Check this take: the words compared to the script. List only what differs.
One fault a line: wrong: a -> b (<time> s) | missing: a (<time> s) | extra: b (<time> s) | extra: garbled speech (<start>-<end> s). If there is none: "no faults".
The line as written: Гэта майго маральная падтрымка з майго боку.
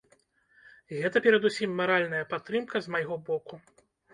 wrong: майго -> перадусім (1.3 s)